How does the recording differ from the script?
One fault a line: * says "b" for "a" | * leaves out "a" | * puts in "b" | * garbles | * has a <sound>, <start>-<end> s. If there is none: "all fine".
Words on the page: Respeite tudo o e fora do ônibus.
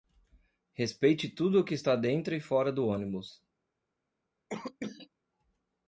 * puts in "que está dentro"
* has a cough, 4.5-5.1 s